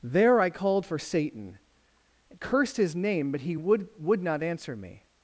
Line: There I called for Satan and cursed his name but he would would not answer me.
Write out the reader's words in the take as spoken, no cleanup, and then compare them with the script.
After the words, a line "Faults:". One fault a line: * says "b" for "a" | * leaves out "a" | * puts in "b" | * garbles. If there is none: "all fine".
There I called for Satan cursed his name but he would would not answer me.
Faults:
* leaves out "and"